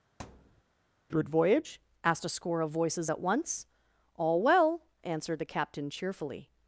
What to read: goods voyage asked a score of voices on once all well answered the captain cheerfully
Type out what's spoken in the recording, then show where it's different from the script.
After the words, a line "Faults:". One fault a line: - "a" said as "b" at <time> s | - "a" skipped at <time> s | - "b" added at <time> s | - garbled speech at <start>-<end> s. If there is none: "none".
good voyage asked a score of voices at once all well answered the captain cheerfully
Faults:
- "goods" said as "good" at 1.1 s
- "on" said as "at" at 3.1 s